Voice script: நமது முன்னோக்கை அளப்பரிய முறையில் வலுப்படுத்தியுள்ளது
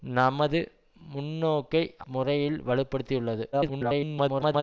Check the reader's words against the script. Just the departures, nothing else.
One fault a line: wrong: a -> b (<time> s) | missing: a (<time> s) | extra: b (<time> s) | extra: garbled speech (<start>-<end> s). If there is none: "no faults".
missing: அளப்பரிய (1.8 s)
extra: garbled speech (3.5-4.6 s)